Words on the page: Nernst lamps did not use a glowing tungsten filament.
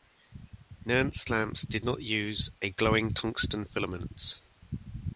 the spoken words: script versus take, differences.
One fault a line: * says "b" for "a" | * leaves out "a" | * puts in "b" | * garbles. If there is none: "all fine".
all fine